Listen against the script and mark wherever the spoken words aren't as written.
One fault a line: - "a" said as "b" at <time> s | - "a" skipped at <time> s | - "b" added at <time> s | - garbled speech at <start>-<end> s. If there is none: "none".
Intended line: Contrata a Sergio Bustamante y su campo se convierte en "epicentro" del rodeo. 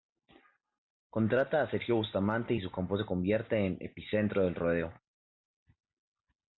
none